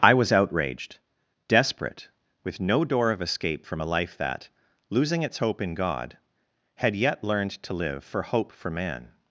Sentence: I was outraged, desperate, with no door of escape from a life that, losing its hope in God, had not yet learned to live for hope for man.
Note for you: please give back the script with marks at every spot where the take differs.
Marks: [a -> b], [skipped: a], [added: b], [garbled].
I was outraged, desperate, with no door of escape from a life that, losing its hope in God, had [skipped: not] yet learned to live for hope for man.